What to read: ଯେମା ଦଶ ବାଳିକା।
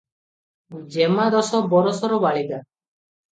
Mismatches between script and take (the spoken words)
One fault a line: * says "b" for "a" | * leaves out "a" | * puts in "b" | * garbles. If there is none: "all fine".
* puts in "ବରଷର"